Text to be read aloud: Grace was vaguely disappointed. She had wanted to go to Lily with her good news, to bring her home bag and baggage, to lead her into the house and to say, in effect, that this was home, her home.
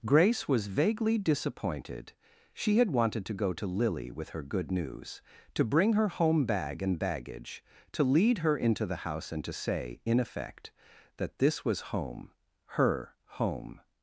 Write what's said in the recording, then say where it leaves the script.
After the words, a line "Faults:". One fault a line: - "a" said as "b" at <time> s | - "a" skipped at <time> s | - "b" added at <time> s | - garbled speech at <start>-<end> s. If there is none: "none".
Grace was vaguely disappointed. She had wanted to go to Lily with her good news, to bring her home bag and baggage, to lead her into the house and to say, in effect, that this was home, her home.
Faults:
none